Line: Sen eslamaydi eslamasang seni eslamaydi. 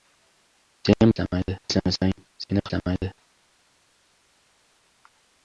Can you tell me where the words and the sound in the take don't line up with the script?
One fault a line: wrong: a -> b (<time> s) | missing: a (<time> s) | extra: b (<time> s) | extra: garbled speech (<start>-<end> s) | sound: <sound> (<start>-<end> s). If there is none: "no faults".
no faults